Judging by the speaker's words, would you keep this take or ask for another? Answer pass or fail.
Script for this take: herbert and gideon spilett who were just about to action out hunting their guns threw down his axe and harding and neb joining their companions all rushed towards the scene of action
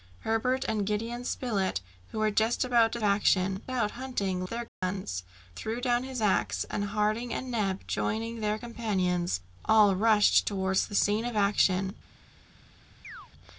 pass